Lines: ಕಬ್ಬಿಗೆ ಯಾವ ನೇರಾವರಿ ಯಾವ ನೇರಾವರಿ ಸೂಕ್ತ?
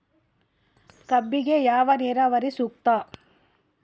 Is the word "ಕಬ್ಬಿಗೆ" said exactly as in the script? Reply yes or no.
yes